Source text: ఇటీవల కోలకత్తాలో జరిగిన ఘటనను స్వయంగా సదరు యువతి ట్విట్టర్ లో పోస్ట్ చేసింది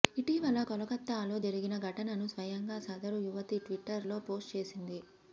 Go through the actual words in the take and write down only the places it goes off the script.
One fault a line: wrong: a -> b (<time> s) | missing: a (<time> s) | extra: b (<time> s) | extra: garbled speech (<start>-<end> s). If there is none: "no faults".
no faults